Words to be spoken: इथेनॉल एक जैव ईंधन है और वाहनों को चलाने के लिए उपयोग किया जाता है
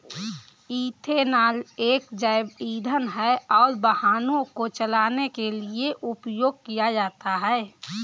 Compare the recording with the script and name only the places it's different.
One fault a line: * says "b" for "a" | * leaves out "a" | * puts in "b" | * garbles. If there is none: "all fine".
all fine